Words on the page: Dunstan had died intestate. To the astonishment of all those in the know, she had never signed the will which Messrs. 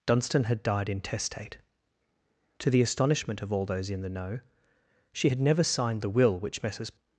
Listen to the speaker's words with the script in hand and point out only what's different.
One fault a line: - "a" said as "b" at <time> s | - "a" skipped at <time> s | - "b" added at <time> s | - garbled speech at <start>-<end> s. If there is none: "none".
none